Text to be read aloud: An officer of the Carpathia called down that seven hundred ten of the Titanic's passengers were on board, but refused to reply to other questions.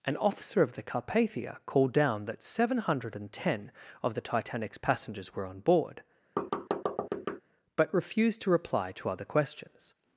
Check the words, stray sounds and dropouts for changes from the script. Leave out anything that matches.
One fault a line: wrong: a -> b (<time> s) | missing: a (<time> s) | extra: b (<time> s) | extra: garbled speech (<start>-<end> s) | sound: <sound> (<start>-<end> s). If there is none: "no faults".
sound: thud (6.4-7.4 s)